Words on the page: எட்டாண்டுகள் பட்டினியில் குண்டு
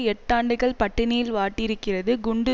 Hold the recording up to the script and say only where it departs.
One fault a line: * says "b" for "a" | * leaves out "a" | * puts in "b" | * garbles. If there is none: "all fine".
* puts in "வாட்டியிருக்கிறது"